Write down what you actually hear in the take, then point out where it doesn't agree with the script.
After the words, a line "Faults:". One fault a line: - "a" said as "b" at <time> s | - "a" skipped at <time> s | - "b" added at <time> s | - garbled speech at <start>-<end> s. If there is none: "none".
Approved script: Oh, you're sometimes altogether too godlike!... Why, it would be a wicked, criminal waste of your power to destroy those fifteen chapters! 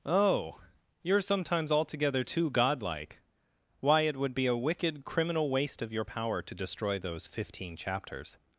Oh, you're sometimes altogether too godlike!... Why, it would be a wicked, criminal waste of your power to destroy those fifteen chapters!
Faults:
none